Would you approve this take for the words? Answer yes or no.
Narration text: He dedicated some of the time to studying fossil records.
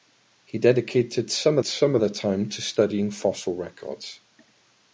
no